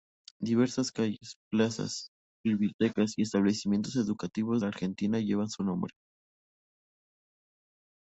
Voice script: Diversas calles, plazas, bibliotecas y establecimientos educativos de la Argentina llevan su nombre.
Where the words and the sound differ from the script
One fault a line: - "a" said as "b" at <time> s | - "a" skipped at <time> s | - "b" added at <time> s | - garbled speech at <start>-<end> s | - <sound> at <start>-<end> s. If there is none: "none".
- "de" skipped at 4.6 s